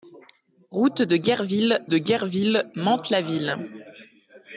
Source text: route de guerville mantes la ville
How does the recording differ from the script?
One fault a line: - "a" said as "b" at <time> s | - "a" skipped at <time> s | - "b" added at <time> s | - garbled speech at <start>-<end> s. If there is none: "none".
- "de guerville" added at 1.8 s